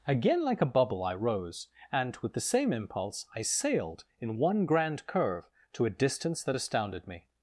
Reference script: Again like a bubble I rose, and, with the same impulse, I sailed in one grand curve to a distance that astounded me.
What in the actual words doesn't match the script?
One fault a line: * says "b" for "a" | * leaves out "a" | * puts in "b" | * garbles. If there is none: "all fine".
all fine